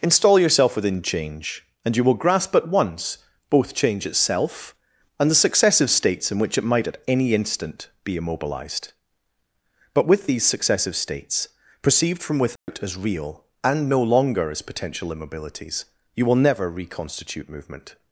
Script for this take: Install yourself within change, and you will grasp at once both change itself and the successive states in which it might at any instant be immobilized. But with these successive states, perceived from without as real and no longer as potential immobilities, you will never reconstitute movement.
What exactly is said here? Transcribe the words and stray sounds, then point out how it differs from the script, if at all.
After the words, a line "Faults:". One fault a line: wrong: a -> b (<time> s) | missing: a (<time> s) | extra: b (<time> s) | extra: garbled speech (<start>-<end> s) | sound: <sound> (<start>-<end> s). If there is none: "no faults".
Install yourself within change, and you will grasp at once both change itself and the successive states in which it might at any instant be immobilized. But with these successive states, perceived from without as real and no longer as potential immobilities, you will never reconstitute movement.
Faults:
sound: dropout (12.6-12.7 s)